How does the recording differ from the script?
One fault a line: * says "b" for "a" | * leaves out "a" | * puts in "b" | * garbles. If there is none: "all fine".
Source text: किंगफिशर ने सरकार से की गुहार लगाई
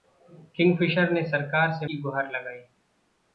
all fine